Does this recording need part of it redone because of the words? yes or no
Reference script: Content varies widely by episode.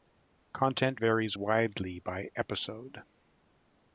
no